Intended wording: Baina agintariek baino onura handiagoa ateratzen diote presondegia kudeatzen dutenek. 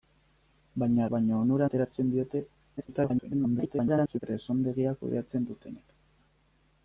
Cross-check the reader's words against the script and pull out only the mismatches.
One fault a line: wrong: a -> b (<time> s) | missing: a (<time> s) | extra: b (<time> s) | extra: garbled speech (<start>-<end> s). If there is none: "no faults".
missing: agintariek (1.0 s)
missing: handiagoa (1.7 s)
extra: garbled speech (2.8-4.2 s)